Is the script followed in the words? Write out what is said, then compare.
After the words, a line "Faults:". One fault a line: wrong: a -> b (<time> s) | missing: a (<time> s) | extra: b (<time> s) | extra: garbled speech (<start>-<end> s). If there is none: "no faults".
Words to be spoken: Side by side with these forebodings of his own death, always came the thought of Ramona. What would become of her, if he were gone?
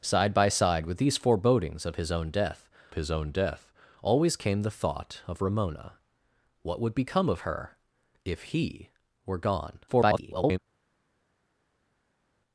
Side by side with these forebodings of his own death his own death, always came the thought of Ramona. What would become of her, if he were gone? [garbled]
Faults:
extra: his own death (2.9 s)
extra: garbled speech (9.9-10.6 s)